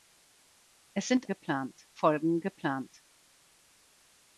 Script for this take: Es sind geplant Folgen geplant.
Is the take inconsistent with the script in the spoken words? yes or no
no